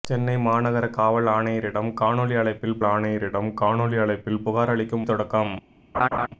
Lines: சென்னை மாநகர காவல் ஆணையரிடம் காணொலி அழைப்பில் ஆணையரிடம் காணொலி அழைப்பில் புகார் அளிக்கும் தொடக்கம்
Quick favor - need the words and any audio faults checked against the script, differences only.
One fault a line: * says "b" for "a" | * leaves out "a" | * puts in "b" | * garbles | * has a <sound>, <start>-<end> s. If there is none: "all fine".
* has a laugh, 5.9-6.3 s